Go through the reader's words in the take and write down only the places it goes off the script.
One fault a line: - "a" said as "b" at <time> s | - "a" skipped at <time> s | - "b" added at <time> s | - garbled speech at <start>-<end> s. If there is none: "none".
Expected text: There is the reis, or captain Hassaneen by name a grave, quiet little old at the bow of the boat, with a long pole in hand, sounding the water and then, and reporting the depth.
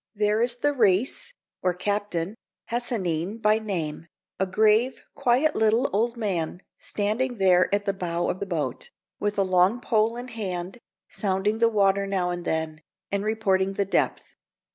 - "man standing there" added at 6.2 s
- "now" added at 12.1 s